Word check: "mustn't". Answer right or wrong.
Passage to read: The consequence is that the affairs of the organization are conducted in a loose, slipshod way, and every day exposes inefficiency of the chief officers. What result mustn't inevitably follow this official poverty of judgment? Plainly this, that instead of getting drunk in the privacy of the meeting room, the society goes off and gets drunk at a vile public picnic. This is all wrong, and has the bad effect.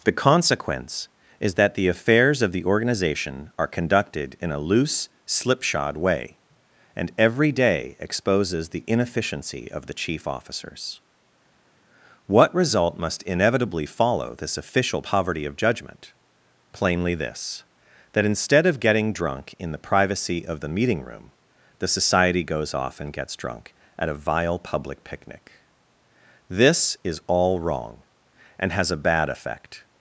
wrong